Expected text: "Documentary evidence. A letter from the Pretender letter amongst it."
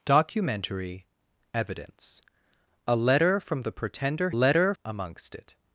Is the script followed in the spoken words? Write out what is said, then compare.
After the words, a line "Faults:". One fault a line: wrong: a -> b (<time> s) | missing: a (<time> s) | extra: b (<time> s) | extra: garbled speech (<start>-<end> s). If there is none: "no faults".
"Documentary evidence. A letter from the Pretender letter amongst it."
Faults:
no faults